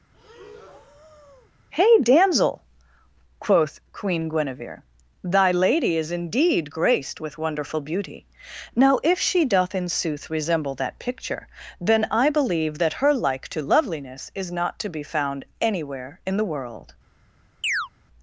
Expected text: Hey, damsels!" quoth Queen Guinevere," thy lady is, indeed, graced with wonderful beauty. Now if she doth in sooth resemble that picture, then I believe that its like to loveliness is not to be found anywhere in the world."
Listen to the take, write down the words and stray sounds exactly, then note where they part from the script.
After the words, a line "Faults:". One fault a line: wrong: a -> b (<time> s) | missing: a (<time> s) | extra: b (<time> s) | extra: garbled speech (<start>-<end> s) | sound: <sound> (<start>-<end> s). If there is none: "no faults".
Hey, damsel!" quoth Queen Guinevere," thy lady is, indeed, graced with wonderful beauty. Now if she doth in sooth resemble that picture, then I believe that her like to loveliness is not to be found anywhere in the world."
Faults:
sound: breath (0.1-1.5 s)
wrong: damsels -> damsel (2.0 s)
wrong: its -> her (13.0 s)
sound: chirp (17.6-17.9 s)